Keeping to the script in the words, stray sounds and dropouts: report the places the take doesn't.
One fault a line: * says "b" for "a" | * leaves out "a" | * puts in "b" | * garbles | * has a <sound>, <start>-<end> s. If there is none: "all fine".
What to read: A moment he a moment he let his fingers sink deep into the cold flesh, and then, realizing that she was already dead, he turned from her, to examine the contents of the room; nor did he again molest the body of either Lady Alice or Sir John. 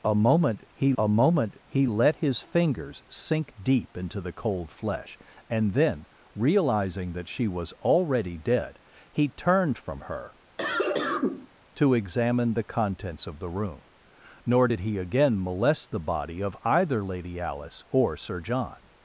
* has a cough, 10.6-11.5 s